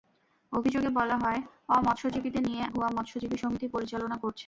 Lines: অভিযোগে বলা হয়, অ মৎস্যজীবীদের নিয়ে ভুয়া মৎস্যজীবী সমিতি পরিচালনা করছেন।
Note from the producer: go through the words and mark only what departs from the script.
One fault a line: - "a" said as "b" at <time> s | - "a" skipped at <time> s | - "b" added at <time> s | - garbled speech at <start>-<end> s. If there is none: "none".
none